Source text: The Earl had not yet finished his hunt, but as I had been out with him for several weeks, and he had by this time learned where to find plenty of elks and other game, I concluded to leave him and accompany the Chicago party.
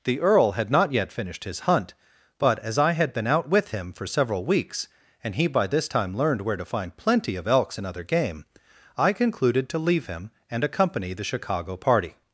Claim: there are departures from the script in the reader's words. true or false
true